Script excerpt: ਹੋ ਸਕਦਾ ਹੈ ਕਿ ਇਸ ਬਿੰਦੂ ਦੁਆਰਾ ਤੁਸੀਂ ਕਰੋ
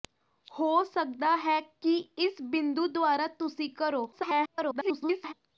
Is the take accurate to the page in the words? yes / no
no